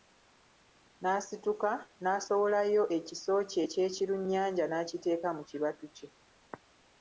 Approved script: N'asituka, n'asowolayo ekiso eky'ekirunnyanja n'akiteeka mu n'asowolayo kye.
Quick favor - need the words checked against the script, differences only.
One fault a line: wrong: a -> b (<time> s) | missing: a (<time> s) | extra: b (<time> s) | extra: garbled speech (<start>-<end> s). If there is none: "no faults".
extra: kye (3.5 s)
wrong: n'asowolayo -> kibatu (5.5 s)